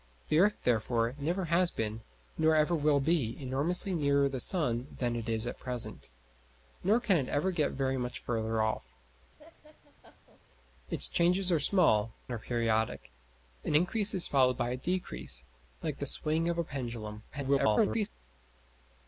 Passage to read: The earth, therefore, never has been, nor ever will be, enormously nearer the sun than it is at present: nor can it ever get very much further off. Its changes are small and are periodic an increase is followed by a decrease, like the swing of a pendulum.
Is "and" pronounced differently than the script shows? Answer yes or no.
yes